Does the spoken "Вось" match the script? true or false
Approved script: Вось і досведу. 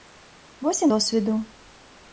true